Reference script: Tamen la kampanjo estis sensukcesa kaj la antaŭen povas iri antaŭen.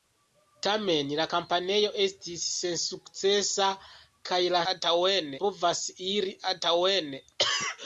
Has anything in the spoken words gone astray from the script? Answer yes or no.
no